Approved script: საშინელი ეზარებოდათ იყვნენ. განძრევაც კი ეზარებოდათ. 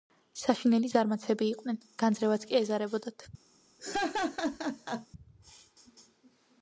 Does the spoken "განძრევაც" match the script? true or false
true